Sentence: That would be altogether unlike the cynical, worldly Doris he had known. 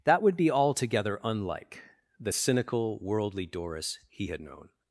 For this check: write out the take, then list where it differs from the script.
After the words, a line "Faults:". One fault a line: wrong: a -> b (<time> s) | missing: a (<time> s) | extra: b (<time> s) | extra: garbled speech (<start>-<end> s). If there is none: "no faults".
That would be altogether unlike the cynical, worldly Doris he had known.
Faults:
no faults